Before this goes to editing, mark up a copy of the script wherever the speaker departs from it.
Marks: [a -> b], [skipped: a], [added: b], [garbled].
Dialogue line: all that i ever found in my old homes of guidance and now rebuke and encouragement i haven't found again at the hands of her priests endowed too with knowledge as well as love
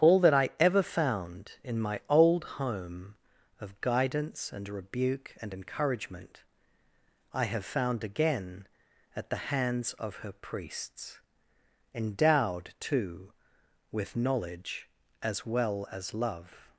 all that i ever found in my old [homes -> home] of guidance and [skipped: now] rebuke and encouragement i [haven't -> have] found again at the hands of her priests endowed too with knowledge as well as love